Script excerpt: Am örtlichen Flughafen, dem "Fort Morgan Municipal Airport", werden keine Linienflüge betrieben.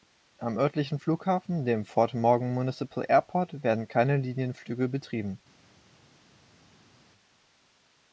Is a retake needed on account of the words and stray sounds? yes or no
no